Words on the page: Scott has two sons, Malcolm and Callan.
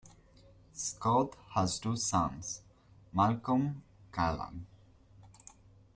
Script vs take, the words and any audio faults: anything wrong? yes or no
yes